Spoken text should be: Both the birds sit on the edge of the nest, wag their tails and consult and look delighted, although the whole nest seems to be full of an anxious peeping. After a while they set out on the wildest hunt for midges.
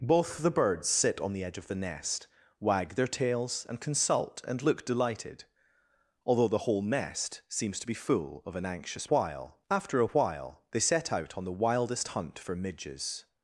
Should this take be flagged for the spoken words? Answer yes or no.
yes